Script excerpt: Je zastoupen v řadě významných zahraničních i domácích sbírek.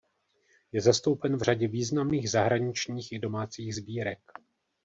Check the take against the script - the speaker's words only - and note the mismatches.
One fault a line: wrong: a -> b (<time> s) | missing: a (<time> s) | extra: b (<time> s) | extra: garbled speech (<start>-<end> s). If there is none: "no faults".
no faults